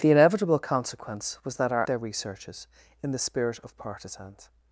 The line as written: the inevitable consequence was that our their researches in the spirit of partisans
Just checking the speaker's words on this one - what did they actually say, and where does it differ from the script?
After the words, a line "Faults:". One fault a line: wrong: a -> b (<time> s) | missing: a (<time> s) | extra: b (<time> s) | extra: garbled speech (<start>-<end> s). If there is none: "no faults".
the inevitable consequence was that our their researches in the spirit of partisans
Faults:
no faults